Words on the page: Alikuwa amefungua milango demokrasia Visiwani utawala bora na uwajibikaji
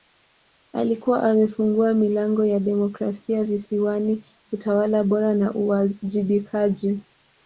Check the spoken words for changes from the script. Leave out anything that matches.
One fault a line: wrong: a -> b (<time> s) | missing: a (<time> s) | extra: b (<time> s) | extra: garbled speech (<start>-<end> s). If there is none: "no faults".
extra: ya (2.5 s)